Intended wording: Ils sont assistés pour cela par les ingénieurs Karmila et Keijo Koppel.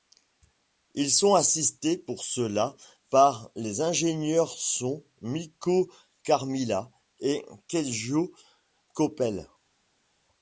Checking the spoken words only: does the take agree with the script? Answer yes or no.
no